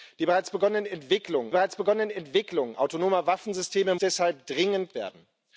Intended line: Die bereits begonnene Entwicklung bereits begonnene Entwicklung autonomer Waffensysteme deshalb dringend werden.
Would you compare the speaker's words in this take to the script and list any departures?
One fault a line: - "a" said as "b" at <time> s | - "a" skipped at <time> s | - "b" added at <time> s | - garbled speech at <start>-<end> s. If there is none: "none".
none